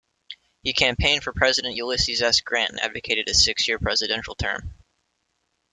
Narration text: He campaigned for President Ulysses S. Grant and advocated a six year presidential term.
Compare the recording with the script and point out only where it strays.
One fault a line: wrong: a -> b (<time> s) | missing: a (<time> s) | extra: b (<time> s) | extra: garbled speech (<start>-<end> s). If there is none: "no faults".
no faults